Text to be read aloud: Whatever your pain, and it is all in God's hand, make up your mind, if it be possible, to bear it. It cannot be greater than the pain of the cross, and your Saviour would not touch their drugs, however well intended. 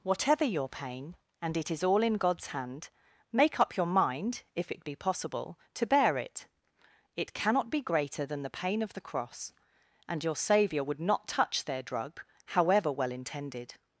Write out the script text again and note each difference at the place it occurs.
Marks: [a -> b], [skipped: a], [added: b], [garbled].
Whatever your pain, and it is all in God's hand, make up your mind, if it be possible, to bear it. It cannot be greater than the pain of the cross, and your Saviour would not touch their [drugs, -> drug] however well intended.